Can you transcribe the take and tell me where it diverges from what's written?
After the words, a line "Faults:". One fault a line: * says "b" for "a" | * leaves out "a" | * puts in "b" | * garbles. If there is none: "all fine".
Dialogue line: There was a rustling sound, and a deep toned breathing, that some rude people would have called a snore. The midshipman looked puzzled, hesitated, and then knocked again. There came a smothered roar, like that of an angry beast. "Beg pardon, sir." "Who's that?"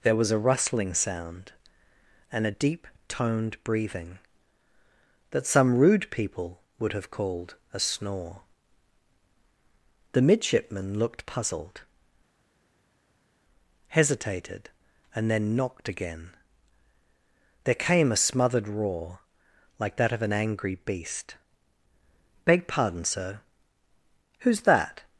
There was a rustling sound, and a deep toned breathing, that some rude people would have called a snore. The midshipman looked puzzled, hesitated, and then knocked again. There came a smothered roar, like that of an angry beast. "Beg pardon, sir." "Who's that?"
Faults:
all fine